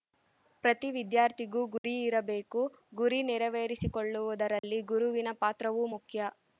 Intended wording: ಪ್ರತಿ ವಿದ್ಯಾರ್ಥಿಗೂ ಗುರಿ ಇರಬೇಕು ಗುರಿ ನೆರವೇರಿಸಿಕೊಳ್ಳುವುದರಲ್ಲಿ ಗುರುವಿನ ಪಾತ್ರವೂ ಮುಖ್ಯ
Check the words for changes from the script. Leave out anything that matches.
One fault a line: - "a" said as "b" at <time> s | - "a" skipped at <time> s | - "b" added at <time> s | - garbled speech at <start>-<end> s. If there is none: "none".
none